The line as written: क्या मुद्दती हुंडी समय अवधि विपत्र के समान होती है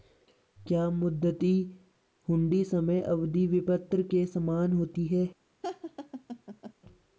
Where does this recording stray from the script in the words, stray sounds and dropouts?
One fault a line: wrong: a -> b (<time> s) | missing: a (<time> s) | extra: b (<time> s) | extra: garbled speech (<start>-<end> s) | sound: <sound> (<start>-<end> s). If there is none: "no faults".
sound: laugh (5.6-6.7 s)